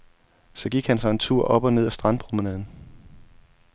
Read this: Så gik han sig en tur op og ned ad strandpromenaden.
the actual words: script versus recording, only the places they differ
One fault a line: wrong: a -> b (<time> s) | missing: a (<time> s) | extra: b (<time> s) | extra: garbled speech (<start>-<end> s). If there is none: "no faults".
no faults